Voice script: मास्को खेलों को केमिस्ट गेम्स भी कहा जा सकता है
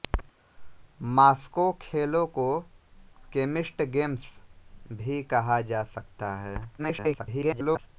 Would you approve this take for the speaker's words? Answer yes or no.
no